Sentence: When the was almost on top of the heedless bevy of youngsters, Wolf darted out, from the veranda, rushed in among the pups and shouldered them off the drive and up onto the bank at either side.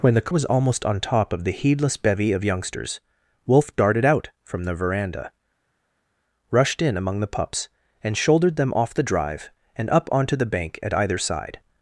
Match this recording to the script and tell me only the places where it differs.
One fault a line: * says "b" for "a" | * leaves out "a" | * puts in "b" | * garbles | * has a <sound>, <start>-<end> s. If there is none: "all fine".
all fine